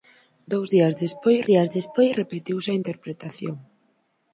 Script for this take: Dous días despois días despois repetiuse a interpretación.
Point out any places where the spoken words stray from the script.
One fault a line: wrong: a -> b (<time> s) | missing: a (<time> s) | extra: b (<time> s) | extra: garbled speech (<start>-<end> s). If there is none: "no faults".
no faults